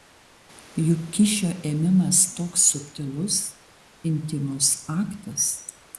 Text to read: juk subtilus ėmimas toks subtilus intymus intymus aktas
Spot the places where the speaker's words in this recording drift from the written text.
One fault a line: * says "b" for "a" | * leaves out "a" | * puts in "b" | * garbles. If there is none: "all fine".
* says "kyšio" for "subtilus"
* leaves out "intymus"